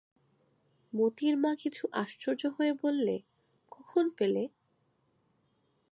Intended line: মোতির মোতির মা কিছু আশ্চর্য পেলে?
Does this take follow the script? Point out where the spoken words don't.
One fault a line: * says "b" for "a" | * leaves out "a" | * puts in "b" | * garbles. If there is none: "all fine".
* leaves out "মোতির"
* puts in "হয়ে বললে কখন"